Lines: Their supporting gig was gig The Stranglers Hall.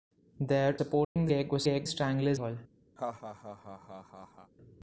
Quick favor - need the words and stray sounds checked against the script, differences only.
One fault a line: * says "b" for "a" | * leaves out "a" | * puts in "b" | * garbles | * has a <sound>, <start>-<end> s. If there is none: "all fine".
* has a dropout, 1.0-1.2 s
* has a laugh, 3.0-4.5 s